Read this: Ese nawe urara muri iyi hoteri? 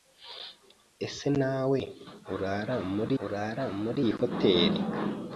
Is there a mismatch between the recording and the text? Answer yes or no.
yes